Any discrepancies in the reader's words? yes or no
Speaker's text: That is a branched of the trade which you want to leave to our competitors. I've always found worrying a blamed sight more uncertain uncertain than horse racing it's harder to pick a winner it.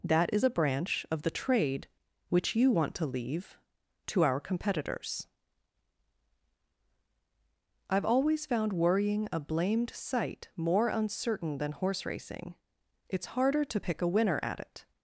yes